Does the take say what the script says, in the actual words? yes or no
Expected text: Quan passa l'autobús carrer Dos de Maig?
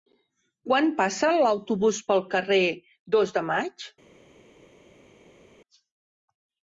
no